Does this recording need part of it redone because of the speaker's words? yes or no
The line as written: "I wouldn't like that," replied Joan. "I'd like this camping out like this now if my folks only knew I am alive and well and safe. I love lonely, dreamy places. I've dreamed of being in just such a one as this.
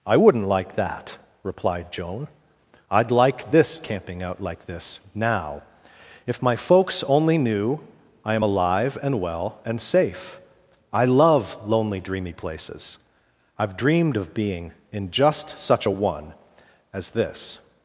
no